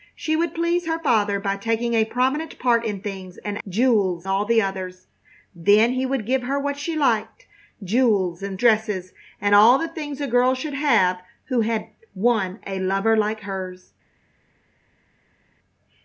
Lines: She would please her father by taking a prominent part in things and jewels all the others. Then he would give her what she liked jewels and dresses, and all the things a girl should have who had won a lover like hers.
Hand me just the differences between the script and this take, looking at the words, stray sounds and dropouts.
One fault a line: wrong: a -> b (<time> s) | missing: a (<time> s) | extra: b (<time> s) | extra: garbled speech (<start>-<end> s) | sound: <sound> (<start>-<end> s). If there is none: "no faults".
no faults